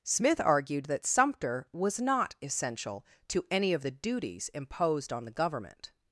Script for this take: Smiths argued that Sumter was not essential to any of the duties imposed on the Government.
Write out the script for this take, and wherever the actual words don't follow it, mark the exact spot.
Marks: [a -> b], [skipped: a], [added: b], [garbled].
[Smiths -> Smith] argued that Sumter was not essential to any of the duties imposed on the Government.